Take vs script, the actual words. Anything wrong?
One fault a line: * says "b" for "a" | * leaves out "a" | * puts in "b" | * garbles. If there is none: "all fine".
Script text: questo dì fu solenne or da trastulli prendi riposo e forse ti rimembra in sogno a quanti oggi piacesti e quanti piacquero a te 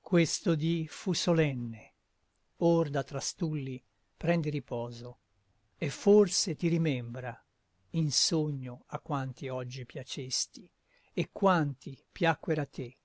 all fine